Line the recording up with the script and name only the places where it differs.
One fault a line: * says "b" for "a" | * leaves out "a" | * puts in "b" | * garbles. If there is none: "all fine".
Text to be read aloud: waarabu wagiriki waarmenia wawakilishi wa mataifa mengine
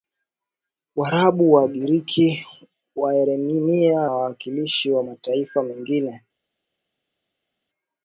all fine